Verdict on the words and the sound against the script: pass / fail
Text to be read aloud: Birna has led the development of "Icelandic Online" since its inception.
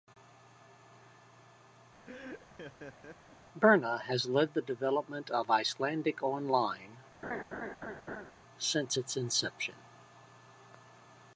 fail